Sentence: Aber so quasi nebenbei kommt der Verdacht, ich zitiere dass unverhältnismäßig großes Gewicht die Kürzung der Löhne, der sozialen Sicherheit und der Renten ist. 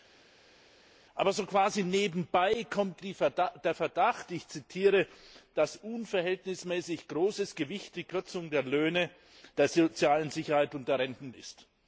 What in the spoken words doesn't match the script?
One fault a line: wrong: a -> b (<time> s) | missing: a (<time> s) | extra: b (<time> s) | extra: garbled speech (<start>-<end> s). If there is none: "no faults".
no faults